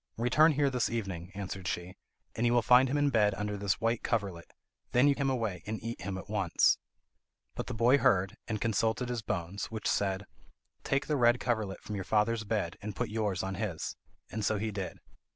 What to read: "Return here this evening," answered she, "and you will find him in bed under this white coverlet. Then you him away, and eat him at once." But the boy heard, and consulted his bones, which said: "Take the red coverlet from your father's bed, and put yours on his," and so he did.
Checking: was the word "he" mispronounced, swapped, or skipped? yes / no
no